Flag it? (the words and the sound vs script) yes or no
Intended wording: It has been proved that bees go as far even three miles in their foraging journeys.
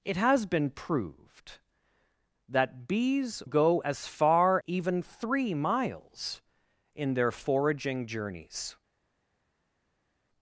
no